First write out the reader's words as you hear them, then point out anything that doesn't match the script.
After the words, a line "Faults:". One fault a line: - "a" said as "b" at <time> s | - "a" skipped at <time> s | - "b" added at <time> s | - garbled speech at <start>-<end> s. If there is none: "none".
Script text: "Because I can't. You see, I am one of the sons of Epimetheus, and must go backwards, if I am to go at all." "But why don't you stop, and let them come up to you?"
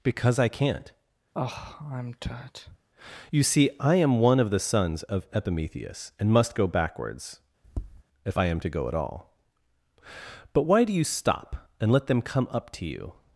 "Because I can't. You see, I am one of the sons of Epimetheus, and must go backwards, if I am to go at all." "But why do you stop, and let them come up to you?"
Faults:
- "don't" said as "do" at 10.8 s